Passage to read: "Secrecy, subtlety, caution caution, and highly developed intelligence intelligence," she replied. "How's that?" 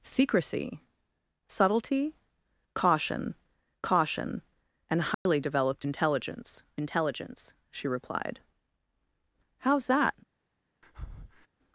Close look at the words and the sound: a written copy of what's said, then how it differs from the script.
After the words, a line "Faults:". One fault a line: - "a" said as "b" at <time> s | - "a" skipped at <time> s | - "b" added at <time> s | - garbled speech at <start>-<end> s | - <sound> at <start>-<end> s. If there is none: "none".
"Secrecy, subtlety, caution caution, and highly developed intelligence intelligence," she replied. "How's that?"
Faults:
- dropout at 5.1-5.3 s
- breath at 10.8-11.5 s